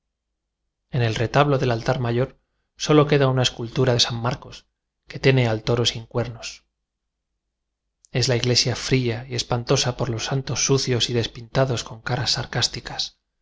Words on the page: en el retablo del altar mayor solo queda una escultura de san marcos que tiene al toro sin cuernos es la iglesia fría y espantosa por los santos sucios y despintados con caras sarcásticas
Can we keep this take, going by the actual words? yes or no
yes